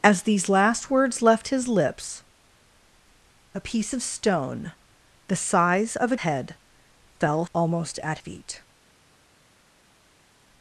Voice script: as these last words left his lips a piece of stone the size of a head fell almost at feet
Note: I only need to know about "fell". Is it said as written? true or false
true